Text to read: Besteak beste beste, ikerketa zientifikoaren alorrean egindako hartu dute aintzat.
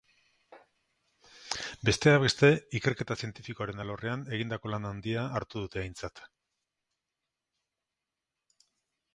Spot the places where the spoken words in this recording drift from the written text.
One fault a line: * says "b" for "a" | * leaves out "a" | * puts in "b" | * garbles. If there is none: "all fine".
* leaves out "beste"
* puts in "lan handia"